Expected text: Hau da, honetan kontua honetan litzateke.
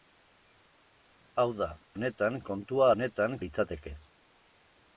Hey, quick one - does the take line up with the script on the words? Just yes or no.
yes